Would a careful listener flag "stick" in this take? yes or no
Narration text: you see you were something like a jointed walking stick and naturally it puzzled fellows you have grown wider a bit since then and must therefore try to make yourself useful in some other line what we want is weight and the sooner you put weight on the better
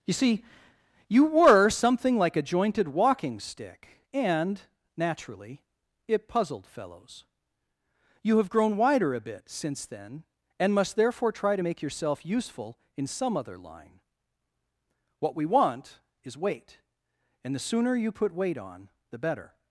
no